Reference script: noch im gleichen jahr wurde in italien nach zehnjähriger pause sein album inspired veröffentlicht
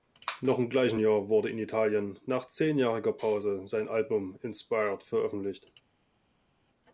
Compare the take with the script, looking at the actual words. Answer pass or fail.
pass